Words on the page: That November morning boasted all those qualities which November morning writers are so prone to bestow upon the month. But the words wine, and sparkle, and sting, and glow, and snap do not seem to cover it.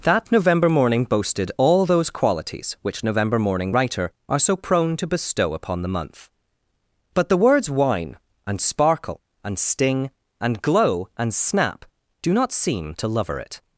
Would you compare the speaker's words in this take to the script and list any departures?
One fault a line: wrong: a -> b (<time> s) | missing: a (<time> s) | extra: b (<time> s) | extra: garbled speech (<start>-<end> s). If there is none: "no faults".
wrong: writers -> writer (3.7 s)
wrong: cover -> lover (13.1 s)